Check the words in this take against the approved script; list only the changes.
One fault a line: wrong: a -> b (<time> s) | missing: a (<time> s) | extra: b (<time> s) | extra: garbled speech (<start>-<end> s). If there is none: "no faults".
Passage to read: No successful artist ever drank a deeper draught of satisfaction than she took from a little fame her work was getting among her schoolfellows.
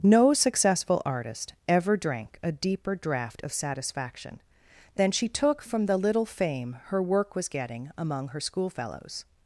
wrong: a -> the (5.9 s)